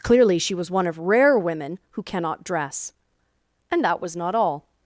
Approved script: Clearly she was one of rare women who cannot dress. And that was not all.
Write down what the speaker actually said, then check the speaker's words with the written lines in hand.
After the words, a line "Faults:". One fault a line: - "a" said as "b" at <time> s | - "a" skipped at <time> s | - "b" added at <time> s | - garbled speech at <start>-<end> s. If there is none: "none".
Clearly she was one of rare women who cannot dress. And that was not all.
Faults:
none